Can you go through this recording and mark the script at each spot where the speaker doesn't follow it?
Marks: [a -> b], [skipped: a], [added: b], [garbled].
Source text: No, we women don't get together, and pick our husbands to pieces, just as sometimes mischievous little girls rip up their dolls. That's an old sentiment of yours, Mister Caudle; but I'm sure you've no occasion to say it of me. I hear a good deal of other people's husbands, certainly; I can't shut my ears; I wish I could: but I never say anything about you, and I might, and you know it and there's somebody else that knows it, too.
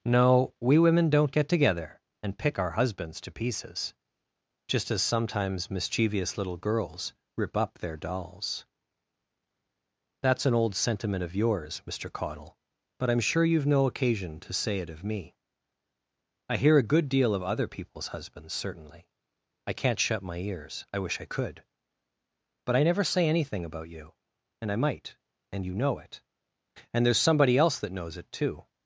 No, we women don't get together, and pick our husbands to pieces, just as sometimes mischievous little girls rip up their dolls. That's an old sentiment of yours, Mister Caudle; but I'm sure you've no occasion to say it of me. I hear a good deal of other people's husbands, certainly; I can't shut my ears; I wish I could: but I never say anything about you, and I might, and you know it and there's somebody else that knows it, too.